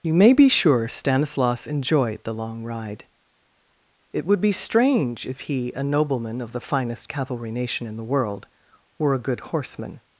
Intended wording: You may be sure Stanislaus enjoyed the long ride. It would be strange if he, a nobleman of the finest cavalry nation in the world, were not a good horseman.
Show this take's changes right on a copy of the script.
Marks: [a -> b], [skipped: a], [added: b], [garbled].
You may be sure Stanislaus enjoyed the long ride. It would be strange if he, a nobleman of the finest cavalry nation in the world, were [skipped: not] a good horseman.